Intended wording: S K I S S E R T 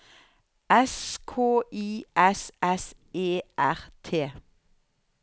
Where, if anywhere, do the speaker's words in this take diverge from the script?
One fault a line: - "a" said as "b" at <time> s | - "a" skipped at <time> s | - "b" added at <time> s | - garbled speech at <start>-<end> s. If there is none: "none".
none